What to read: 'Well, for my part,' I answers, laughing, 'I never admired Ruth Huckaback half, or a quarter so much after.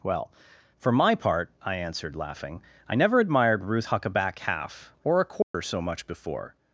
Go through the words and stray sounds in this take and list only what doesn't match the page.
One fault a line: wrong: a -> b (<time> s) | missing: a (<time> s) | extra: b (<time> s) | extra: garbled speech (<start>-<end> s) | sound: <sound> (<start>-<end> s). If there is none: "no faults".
wrong: answers -> answered (1.8 s)
sound: dropout (5.4-5.5 s)
wrong: after -> before (6.0 s)